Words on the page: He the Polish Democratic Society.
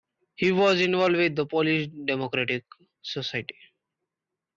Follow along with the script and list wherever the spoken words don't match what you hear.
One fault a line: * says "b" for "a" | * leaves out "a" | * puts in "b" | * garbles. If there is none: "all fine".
* puts in "was involved with"